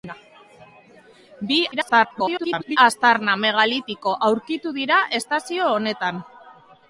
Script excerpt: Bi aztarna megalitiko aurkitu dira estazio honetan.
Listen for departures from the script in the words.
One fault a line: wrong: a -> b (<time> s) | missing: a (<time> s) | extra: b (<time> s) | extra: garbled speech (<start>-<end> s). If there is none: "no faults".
extra: garbled speech (1.7-2.8 s)